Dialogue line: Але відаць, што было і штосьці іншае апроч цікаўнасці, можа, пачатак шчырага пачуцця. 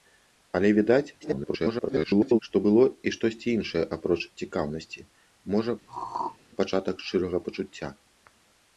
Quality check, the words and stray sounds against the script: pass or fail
fail